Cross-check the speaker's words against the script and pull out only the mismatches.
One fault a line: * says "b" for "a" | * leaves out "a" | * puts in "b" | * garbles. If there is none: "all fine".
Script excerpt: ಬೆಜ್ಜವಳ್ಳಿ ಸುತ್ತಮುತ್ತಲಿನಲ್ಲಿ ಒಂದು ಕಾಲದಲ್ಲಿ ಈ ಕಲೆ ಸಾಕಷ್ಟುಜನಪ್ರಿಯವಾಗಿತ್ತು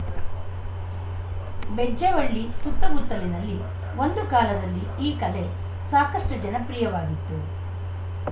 all fine